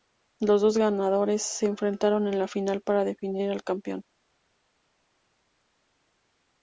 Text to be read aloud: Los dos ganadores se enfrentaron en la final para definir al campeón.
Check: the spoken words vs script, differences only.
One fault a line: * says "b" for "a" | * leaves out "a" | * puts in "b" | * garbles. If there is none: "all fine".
all fine